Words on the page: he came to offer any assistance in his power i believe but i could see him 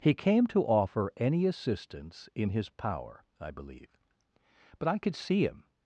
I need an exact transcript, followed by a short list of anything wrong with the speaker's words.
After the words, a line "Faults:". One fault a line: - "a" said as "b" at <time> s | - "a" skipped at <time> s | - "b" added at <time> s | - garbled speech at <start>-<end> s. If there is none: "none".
he came to offer any assistance in his power i believe but i could see him
Faults:
none